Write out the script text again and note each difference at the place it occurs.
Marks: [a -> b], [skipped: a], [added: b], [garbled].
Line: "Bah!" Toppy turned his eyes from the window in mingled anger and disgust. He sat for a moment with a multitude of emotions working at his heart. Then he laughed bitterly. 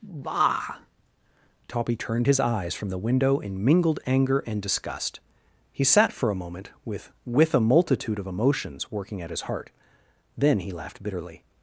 "Bah!" Toppy turned his eyes from the window in mingled anger and disgust. He sat for a moment with [added: with] a multitude of emotions working at his heart. Then he laughed bitterly.